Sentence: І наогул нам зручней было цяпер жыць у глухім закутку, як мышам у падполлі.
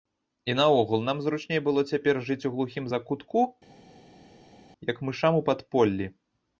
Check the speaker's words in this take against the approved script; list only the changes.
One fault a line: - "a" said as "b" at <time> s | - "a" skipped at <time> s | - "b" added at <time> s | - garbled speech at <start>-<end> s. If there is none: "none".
none